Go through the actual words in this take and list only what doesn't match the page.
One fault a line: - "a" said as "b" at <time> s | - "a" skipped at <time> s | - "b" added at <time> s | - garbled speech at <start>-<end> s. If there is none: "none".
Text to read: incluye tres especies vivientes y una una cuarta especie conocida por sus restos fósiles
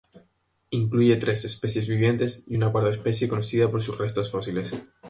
- "una" skipped at 2.7 s